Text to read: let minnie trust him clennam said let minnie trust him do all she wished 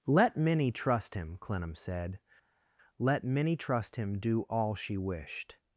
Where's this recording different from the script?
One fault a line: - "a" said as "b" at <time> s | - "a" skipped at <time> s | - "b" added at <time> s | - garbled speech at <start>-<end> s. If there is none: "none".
none